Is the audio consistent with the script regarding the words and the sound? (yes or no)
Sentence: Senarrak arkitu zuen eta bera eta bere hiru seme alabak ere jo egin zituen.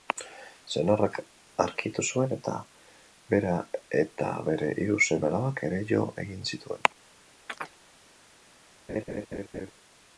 no